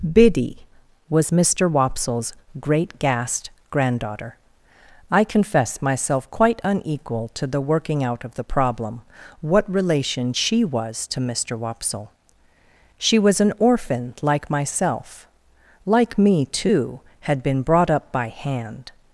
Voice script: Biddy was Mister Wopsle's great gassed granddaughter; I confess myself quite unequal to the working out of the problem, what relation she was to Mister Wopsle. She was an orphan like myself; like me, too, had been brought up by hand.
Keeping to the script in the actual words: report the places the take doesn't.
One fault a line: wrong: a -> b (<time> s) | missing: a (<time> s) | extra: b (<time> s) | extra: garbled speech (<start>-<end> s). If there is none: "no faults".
no faults